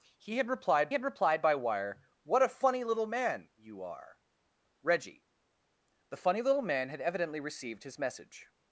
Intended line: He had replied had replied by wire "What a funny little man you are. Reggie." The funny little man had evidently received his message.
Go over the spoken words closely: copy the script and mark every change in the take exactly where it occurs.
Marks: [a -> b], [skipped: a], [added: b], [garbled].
He had replied had replied by wire "What a funny little man you are. Reggie." The funny little man had evidently received his message.